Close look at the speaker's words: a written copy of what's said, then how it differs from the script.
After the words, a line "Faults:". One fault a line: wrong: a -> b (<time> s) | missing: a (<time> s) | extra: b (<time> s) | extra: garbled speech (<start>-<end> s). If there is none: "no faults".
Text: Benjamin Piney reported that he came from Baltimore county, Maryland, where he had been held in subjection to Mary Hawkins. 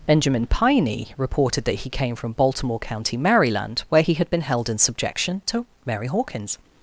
Benjamin Piney reported that he came from Baltimore county, Maryland, where he had been held in subjection to Mary Hawkins.
Faults:
no faults